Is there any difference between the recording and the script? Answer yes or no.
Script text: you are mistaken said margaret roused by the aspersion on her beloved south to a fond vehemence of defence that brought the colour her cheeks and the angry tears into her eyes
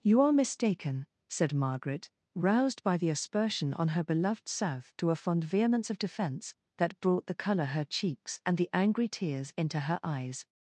no